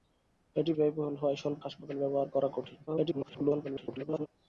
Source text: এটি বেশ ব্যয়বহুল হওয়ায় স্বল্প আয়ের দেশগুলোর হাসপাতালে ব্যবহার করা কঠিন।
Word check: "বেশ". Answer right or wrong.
wrong